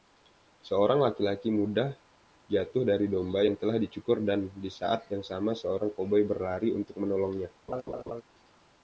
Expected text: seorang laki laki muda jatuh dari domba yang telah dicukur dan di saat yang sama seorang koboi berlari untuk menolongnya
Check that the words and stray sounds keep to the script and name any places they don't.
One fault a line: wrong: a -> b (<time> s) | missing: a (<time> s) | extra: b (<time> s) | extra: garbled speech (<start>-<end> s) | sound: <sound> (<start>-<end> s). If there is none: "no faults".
sound: laugh (7.7-8.2 s)